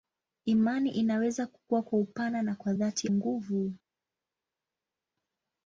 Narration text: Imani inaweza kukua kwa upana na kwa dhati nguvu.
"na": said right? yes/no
yes